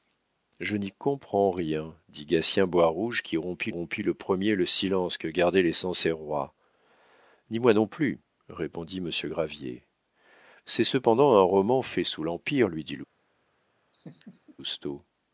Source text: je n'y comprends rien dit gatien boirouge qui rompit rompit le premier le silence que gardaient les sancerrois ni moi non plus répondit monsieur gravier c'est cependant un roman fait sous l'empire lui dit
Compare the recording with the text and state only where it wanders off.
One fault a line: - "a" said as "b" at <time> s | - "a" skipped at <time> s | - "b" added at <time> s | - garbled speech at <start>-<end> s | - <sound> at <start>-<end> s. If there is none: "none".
- laugh at 13.9-14.6 s